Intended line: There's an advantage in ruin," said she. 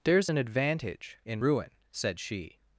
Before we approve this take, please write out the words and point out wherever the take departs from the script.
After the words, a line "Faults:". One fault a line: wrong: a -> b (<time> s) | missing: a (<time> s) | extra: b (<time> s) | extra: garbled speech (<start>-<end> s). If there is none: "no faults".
There's an advantage in ruin," said she.
Faults:
no faults